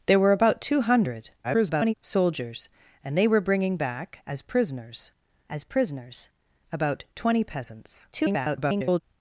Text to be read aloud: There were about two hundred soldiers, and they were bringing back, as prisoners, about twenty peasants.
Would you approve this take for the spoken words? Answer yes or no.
no